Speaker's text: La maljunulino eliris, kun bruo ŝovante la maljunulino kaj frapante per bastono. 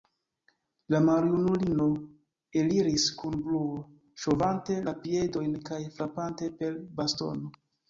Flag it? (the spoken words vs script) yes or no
yes